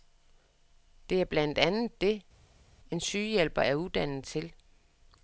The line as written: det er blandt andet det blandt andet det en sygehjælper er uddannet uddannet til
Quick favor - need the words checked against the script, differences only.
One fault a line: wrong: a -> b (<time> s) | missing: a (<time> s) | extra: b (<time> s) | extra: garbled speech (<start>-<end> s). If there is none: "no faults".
missing: blandt andet det (2.2 s)
missing: uddannet (4.2 s)